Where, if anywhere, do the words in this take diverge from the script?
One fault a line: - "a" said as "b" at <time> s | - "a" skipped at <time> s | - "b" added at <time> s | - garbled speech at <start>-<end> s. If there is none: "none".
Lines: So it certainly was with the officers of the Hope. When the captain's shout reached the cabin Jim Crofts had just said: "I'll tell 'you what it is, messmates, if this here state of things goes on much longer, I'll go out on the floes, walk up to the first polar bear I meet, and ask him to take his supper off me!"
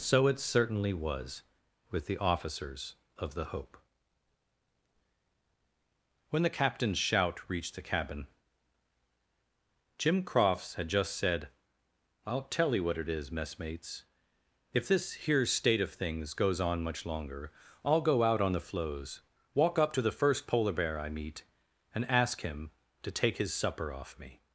none